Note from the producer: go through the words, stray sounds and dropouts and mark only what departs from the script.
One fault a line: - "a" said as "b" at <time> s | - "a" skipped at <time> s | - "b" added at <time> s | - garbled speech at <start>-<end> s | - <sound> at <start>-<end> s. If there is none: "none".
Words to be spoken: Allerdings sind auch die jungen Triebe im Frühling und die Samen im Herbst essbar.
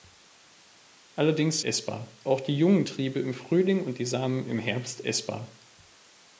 - "sind" said as "essbar" at 1.6 s